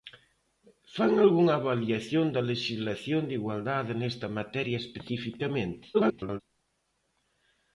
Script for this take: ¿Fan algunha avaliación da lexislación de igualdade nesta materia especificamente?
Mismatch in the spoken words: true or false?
true